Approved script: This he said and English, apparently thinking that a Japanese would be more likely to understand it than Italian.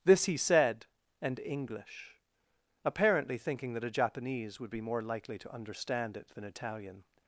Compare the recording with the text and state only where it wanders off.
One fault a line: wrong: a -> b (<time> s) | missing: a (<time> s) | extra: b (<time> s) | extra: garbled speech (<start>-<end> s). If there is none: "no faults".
no faults